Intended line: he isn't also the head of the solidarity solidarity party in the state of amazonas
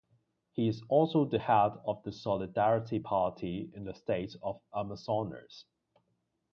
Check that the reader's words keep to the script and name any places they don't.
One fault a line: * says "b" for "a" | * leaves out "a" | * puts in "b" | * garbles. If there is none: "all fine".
* says "is" for "isn't"
* leaves out "solidarity"